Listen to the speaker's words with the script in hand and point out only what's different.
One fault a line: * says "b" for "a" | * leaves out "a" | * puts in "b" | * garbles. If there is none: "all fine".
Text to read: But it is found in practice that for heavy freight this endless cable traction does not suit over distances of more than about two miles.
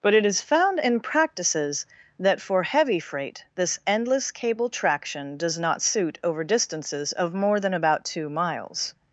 * says "practices" for "practice"